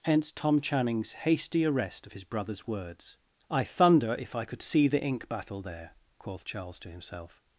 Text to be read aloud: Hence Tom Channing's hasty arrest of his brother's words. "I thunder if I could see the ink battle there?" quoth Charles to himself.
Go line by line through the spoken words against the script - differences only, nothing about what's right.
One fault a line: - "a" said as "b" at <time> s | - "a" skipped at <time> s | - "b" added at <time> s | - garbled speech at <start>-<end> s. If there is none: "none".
none